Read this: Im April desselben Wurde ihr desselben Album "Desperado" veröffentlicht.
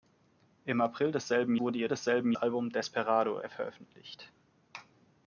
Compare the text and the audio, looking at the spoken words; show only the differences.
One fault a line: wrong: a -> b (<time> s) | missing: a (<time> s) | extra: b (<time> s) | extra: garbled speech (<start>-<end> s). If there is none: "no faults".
no faults